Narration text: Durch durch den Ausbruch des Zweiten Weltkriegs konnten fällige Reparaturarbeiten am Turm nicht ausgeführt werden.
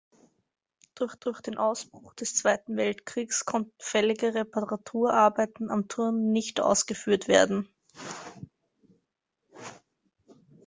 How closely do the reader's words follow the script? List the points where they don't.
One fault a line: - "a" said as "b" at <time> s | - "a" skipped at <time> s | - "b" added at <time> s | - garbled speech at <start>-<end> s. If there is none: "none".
none